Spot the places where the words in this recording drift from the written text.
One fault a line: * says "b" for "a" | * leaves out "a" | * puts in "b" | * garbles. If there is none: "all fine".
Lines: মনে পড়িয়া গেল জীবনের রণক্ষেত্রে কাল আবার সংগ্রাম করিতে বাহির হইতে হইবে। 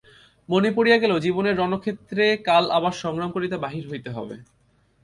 all fine